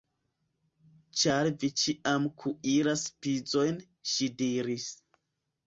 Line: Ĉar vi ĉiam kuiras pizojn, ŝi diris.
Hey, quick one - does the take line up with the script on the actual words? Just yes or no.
yes